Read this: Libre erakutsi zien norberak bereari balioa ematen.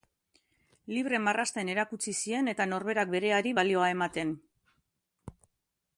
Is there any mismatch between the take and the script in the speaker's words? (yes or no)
yes